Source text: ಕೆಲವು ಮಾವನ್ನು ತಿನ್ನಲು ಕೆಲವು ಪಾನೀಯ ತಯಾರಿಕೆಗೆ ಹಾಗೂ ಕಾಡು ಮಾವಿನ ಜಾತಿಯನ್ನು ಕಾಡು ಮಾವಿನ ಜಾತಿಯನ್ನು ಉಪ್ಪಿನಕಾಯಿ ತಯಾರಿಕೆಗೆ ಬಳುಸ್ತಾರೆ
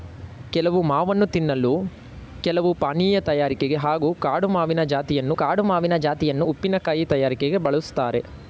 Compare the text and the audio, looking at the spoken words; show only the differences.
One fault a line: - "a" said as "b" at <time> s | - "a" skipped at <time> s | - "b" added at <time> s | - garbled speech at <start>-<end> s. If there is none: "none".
none